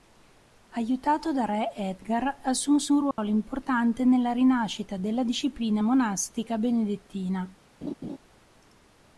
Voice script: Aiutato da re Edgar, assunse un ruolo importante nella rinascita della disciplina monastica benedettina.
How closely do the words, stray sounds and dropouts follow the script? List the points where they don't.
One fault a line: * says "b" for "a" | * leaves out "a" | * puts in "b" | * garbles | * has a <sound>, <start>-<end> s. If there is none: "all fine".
* has a dropout, 3.1-3.2 s
* has a laugh, 7.8-8.2 s